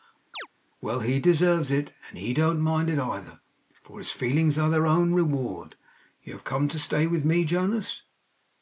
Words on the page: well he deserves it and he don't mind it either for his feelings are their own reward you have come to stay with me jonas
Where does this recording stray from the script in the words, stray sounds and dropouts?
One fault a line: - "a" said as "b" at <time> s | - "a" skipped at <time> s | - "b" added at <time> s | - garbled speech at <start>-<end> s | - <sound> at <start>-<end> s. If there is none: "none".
- chirp at 0.3-0.5 s